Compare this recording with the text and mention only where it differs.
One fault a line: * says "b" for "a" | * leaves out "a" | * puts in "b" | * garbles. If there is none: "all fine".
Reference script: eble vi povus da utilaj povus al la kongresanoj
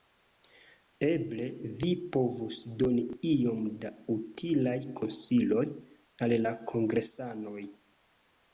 * puts in "doni iom"
* says "konsiloj" for "povus"